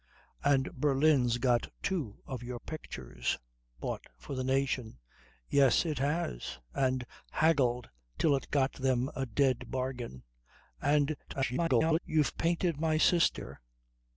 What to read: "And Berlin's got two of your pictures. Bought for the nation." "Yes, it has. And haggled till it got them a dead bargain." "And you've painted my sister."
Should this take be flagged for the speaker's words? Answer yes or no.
yes